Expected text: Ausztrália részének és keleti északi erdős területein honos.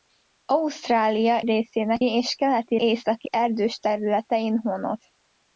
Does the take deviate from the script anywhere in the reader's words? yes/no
no